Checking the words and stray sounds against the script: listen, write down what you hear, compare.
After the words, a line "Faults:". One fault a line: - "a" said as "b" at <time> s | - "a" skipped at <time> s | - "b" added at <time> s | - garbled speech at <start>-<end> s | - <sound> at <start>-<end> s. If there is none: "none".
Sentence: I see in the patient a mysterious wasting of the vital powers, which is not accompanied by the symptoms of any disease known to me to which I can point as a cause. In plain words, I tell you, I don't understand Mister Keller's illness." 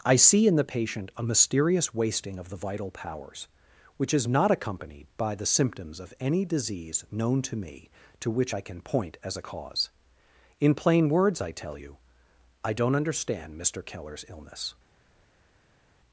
I see in the patient a mysterious wasting of the vital powers, which is not accompanied by the symptoms of any disease known to me to which I can point as a cause. In plain words, I tell you, I don't understand Mister Keller's illness."
Faults:
none